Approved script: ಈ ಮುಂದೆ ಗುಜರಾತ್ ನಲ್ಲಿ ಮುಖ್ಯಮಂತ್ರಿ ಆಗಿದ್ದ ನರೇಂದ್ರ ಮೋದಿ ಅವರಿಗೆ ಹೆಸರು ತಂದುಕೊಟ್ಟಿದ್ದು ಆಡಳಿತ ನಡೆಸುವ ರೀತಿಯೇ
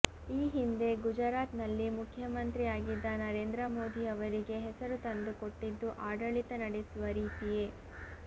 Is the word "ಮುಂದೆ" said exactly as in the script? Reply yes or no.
no